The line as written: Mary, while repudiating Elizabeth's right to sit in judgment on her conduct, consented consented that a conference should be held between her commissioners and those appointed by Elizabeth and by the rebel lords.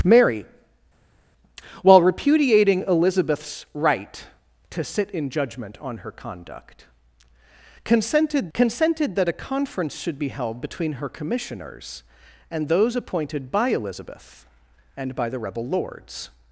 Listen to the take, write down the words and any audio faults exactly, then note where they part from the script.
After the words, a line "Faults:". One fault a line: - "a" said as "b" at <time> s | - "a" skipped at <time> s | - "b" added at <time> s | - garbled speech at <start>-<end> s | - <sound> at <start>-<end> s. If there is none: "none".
Mary, while repudiating Elizabeth's right to sit in judgment on her conduct, consented consented that a conference should be held between her commissioners and those appointed by Elizabeth and by the rebel lords.
Faults:
none